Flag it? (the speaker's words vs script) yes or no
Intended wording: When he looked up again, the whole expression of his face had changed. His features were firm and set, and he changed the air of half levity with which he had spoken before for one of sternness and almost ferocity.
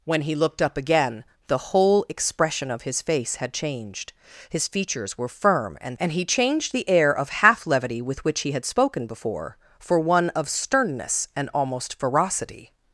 yes